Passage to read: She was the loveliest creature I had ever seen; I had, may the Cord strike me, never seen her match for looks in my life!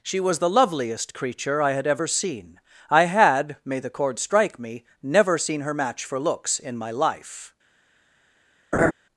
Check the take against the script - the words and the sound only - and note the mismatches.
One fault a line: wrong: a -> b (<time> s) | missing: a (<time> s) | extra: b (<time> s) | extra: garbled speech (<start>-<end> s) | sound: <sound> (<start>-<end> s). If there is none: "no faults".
sound: laugh (8.7-8.9 s)